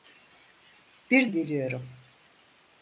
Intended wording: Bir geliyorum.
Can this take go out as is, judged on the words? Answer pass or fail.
pass